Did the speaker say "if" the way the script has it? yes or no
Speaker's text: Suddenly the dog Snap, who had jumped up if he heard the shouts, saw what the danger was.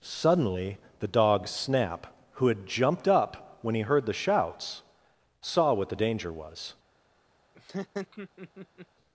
no